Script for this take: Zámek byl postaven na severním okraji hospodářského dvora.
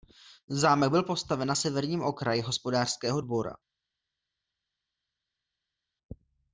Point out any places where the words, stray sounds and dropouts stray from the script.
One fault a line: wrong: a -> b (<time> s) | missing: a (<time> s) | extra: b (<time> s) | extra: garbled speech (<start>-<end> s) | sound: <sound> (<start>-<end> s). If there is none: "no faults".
no faults